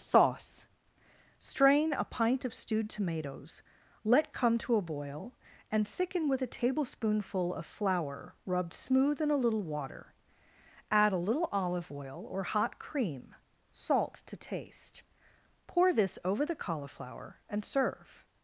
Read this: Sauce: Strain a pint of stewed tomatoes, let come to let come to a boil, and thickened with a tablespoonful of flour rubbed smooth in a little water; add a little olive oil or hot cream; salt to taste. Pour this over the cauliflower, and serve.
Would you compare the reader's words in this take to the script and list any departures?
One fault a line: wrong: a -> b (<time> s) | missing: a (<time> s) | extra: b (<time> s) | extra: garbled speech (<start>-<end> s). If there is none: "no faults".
missing: let come to (4.8 s)
wrong: thickened -> thicken (5.9 s)